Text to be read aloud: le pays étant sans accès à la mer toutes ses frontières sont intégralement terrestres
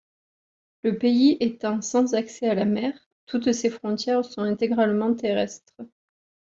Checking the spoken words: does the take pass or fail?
pass